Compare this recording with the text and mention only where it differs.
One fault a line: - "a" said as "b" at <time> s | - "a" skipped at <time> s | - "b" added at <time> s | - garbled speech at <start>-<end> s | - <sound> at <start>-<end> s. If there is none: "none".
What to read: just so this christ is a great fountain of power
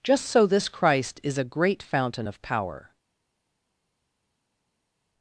none